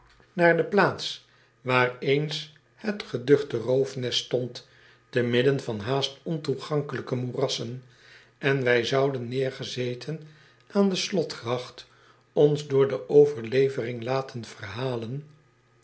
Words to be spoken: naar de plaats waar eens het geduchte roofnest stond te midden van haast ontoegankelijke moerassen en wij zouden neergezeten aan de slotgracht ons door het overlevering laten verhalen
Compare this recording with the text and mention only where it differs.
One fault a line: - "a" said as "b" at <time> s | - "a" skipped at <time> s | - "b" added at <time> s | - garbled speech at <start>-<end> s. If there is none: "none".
- "het" said as "de" at 12.9 s